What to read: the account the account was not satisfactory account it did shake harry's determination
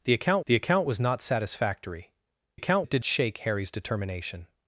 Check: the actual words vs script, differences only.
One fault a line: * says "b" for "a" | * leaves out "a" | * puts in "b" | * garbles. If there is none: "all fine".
all fine